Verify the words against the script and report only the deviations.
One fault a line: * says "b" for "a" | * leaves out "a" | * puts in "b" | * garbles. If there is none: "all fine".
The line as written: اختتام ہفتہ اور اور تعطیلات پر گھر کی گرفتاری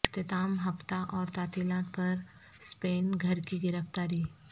* leaves out "اور"
* puts in "سپین"